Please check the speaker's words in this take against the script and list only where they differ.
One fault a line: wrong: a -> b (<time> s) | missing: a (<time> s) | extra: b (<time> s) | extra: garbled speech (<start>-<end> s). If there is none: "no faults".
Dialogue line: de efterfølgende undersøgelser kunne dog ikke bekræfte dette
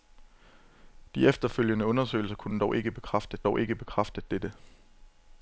extra: dog ikke bekræfte (3.4 s)